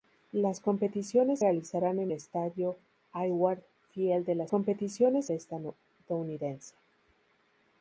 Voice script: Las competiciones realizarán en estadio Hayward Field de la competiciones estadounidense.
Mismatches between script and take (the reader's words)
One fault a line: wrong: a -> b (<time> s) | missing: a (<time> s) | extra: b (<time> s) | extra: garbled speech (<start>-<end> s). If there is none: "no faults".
no faults